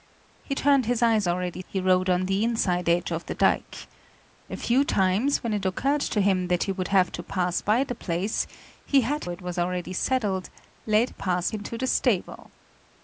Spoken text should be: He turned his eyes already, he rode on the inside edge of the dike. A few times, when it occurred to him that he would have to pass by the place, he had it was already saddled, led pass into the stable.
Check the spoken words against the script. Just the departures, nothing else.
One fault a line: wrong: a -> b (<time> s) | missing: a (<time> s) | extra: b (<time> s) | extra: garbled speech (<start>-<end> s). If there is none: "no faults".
no faults